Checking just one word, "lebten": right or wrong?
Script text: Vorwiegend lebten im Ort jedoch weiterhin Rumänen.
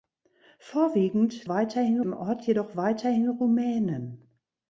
wrong